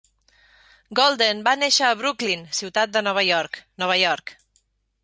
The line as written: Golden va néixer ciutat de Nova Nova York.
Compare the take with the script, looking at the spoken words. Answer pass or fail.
fail